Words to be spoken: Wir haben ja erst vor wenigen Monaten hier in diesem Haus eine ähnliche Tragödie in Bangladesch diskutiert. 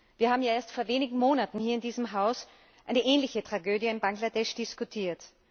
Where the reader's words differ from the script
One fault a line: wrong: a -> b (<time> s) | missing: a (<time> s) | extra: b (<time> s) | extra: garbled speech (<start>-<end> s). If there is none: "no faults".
no faults